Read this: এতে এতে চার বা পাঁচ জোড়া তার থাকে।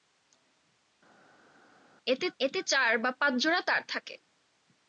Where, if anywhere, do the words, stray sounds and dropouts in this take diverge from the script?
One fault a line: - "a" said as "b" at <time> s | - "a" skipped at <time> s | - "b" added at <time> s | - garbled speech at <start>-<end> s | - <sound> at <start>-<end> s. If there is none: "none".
none